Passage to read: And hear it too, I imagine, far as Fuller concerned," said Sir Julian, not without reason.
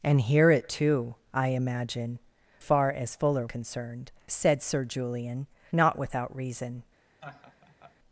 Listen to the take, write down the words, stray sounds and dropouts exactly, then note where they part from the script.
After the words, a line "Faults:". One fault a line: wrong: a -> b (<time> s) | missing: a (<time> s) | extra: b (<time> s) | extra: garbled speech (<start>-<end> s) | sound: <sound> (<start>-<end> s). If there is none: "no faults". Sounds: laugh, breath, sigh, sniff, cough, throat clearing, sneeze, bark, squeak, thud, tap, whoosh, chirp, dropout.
And hear it too, I imagine, far as Fuller concerned," said Sir Julian, not without reason.
Faults:
sound: laugh (7.2-8.0 s)